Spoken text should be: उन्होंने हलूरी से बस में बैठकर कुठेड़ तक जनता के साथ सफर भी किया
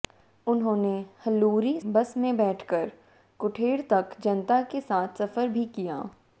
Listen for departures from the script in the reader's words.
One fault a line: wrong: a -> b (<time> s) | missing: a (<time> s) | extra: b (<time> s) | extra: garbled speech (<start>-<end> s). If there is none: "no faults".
missing: से (1.8 s)